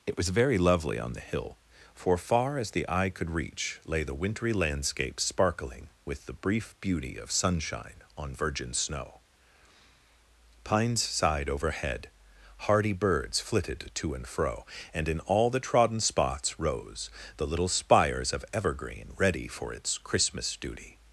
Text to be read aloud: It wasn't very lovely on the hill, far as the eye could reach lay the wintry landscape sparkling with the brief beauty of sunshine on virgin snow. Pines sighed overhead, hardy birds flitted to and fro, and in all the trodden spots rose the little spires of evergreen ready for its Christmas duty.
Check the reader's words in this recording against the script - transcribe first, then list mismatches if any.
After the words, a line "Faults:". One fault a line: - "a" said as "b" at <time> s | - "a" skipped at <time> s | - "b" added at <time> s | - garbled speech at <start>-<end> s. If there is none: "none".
It was very lovely on the hill, for far as the eye could reach lay the wintry landscape sparkling with the brief beauty of sunshine on virgin snow. Pines sighed overhead, hardy birds flitted to and fro, and in all the trodden spots rose the little spires of evergreen ready for its Christmas duty.
Faults:
- "wasn't" said as "was" at 0.2 s
- "for" added at 1.9 s